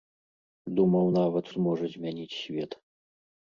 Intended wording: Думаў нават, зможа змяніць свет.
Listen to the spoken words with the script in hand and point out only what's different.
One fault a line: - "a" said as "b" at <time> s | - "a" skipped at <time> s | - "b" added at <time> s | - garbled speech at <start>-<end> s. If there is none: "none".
none